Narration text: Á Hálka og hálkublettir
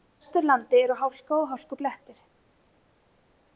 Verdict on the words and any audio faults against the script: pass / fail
fail